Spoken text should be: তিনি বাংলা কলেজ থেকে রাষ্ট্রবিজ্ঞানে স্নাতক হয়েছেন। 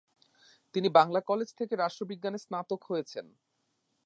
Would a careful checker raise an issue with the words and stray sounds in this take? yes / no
no